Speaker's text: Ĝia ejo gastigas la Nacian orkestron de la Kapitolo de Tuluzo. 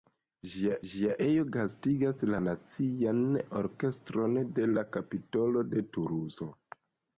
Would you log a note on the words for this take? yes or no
yes